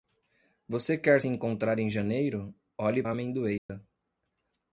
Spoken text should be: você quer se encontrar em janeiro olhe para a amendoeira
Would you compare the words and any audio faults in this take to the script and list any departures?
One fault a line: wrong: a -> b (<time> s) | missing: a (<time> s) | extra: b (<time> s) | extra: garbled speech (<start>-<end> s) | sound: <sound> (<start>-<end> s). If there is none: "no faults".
missing: se (1.2 s)
missing: para (3.0 s)
sound: dropout (3.6-3.7 s)